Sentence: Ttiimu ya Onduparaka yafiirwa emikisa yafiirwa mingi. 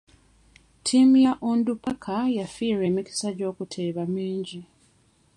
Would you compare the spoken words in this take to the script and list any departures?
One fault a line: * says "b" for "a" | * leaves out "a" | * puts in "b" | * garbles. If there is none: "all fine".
* says "gy'okuteeba" for "yafiirwa"